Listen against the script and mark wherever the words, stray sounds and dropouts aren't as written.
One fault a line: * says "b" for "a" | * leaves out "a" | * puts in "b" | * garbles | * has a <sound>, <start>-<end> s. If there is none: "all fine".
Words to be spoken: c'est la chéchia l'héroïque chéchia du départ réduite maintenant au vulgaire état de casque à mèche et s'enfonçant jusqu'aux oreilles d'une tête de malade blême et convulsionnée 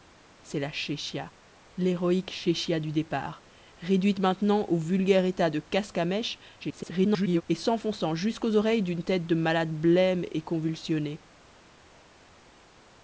* garbles